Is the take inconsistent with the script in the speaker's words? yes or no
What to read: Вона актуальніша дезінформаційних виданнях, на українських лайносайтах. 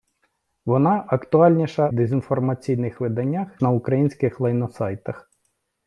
no